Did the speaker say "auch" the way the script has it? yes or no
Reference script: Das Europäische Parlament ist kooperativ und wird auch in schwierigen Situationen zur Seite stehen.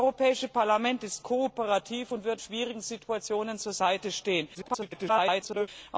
no